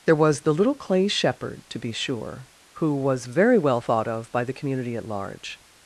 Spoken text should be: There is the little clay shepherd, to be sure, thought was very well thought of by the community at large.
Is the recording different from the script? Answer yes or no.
yes